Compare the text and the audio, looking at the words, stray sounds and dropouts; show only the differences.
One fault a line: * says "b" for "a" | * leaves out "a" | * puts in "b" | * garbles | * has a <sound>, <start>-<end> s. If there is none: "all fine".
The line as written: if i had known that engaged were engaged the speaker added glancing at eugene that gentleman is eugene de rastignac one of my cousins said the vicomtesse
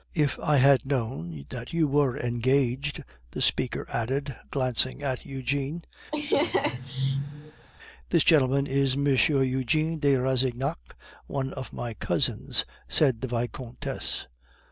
* says "you" for "engaged"
* has a laugh, 6.1-7.7 s
* says "this" for "that"
* puts in "m"